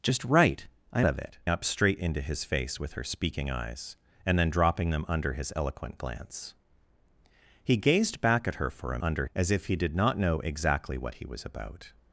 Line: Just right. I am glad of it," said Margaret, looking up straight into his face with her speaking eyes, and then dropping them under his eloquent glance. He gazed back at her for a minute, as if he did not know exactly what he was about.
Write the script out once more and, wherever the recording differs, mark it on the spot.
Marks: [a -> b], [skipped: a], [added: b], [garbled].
Just right. I [skipped: am glad] of it," [skipped: said Margaret, looking] up straight into his face with her speaking eyes, and then dropping them under his eloquent glance. He gazed back at her for a [minute, -> under] as if he did not know exactly what he was about.